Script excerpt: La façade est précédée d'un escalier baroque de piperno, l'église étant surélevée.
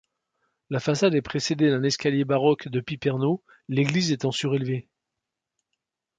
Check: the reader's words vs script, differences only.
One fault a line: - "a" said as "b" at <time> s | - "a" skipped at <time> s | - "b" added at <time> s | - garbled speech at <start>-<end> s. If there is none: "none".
none